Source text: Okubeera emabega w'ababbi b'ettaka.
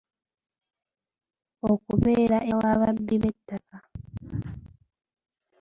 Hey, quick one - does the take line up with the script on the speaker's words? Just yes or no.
no